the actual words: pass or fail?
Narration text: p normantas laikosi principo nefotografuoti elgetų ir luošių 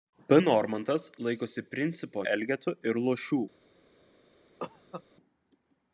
fail